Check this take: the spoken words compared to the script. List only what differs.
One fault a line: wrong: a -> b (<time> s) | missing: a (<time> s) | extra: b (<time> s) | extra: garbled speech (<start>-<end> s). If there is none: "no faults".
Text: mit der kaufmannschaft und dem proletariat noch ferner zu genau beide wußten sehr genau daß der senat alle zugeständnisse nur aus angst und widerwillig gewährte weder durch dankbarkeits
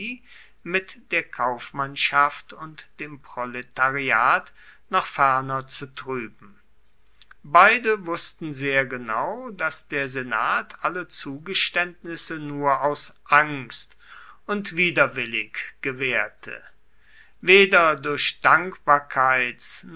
wrong: genau -> trüben (5.9 s)